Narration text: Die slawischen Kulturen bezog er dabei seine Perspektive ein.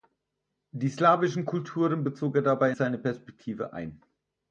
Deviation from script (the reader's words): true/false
false